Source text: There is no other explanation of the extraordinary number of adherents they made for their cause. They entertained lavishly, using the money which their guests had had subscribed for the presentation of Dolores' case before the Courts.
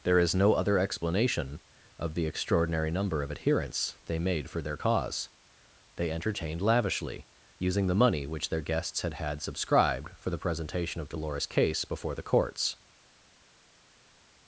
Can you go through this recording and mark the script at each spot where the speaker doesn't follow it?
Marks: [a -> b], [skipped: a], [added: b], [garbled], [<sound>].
There is no other explanation of the extraordinary number of adherents they made for their cause. They entertained lavishly, using the money which their guests had had subscribed for the presentation of Dolores' case before the Courts.